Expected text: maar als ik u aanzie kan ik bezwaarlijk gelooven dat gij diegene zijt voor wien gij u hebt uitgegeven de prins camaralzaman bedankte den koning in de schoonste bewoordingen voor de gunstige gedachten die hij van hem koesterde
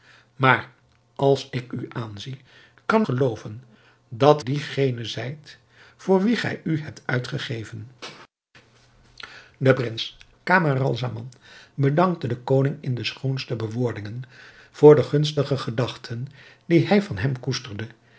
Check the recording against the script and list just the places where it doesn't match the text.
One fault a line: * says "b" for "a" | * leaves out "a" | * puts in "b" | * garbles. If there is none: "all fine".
* leaves out "ik bezwaarlijk"
* leaves out "gij"